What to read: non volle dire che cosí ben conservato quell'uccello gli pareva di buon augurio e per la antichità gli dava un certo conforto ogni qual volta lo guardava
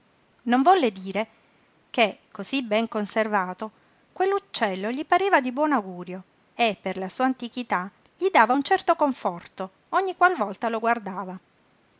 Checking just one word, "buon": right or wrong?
right